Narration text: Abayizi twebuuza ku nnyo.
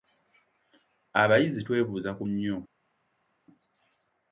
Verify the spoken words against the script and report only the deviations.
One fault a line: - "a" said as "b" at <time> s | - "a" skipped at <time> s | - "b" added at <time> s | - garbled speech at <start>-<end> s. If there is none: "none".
none